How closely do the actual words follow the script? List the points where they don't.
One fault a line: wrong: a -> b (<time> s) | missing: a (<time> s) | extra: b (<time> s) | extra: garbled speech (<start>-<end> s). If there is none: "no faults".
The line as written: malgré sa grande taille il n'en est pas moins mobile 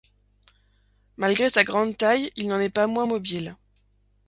no faults